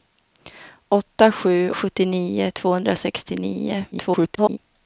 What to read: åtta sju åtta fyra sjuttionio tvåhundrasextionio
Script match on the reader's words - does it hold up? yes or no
no